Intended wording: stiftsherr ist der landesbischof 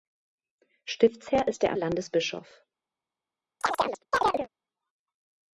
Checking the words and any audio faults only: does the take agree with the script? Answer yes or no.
no